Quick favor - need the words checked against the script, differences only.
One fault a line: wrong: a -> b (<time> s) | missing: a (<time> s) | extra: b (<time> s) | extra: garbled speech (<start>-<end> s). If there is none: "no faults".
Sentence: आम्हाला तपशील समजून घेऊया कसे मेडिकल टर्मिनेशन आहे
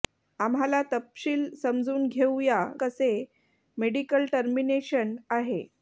no faults